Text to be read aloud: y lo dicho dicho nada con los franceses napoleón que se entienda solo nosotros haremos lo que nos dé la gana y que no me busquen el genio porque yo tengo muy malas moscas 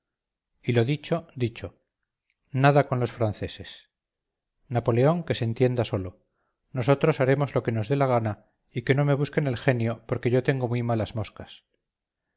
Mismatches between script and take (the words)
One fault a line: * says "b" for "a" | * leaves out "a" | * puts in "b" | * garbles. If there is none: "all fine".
all fine